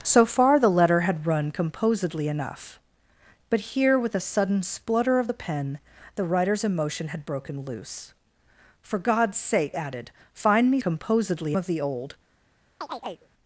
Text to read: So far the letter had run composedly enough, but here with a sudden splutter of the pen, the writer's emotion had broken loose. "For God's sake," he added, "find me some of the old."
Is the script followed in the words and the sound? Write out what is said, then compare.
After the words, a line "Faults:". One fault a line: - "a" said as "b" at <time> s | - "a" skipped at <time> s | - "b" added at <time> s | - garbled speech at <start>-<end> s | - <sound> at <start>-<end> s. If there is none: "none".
So far the letter had run composedly enough, but here with a sudden splutter of the pen, the writer's emotion had broken loose. "For God's sake," added, "find me composedly of the old."
Faults:
- "he" skipped at 9.8 s
- "some" said as "composedly" at 10.8 s
- chirp at 12.8-13.3 s